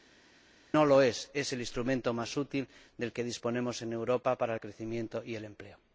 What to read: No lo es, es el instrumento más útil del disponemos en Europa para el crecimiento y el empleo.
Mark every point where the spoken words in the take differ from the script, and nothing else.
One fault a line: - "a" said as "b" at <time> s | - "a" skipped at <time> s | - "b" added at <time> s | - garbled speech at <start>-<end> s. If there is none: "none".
- "que" added at 3.1 s